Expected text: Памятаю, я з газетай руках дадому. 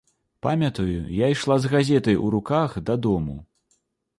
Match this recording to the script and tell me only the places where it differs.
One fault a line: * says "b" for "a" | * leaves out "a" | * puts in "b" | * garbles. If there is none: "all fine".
* puts in "ішла"
* puts in "у"